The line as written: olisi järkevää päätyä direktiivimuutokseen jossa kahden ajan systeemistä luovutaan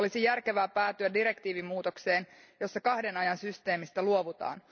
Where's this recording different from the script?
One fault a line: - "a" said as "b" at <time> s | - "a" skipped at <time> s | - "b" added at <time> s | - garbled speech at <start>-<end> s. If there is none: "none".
none